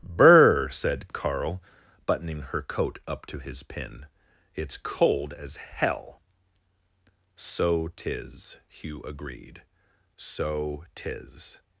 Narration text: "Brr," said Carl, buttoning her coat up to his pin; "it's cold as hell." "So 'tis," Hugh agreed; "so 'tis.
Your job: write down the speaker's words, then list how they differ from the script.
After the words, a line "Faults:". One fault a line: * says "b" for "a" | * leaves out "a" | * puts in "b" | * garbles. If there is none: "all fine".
"Brr," said Carl, buttoning her coat up to his pin; "it's cold as hell." "So 'tis," Hugh agreed; "so 'tis.
Faults:
all fine